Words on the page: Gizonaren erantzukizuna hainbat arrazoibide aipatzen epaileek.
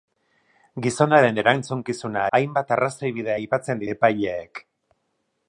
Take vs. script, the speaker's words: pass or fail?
pass